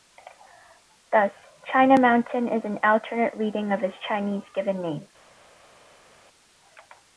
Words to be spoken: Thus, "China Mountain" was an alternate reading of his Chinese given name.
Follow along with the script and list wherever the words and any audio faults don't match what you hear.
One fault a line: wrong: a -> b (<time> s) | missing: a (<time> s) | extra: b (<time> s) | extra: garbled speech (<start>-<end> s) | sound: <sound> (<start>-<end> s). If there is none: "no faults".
wrong: was -> is (2.5 s)